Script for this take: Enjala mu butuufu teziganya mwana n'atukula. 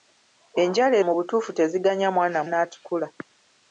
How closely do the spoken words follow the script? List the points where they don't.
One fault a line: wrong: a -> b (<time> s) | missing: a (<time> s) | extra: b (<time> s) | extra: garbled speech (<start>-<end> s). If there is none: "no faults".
no faults